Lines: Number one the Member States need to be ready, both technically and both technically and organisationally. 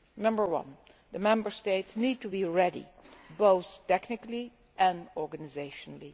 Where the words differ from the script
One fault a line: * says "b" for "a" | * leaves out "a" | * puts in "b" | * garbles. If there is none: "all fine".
* leaves out "both technically and"